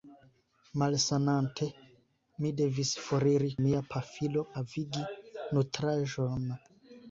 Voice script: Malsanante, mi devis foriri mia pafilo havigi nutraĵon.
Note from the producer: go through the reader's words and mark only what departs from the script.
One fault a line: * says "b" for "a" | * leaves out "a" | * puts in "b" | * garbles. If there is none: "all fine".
all fine